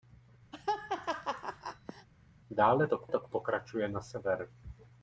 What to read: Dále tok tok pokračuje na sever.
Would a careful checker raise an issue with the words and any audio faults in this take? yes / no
yes